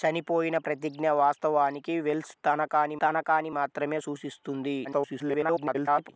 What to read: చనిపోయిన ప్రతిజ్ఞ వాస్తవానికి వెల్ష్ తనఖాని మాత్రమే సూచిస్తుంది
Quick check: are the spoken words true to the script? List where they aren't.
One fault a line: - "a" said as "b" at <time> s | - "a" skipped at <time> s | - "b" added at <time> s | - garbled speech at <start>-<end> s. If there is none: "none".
- "తనఖాని" added at 3.0 s
- garbled speech at 4.8-6.1 s